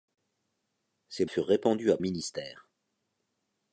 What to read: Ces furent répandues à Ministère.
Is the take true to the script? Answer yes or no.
yes